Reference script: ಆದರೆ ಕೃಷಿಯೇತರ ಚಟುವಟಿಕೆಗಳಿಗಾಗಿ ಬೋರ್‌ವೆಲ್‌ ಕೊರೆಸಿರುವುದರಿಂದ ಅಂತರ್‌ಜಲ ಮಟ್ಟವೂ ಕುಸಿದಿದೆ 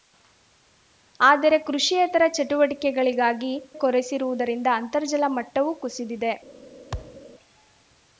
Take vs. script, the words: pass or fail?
fail